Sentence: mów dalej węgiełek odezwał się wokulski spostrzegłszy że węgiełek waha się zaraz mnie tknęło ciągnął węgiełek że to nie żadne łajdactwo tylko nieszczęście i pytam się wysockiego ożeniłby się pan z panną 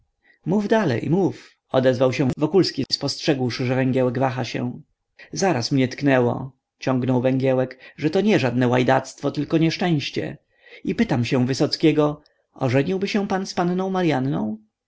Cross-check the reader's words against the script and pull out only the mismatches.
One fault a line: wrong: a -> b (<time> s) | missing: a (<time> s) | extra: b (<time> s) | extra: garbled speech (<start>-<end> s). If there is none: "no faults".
wrong: węgiełek -> mów (1.1 s)